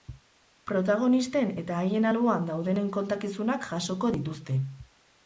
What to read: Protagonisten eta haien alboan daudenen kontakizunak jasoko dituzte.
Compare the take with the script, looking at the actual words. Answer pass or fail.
pass